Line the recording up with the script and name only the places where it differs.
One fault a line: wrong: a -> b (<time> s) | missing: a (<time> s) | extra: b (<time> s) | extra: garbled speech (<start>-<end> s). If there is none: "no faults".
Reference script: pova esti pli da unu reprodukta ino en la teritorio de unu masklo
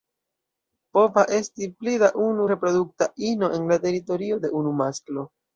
no faults